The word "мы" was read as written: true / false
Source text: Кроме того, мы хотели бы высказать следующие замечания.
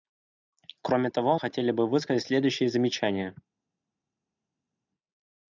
false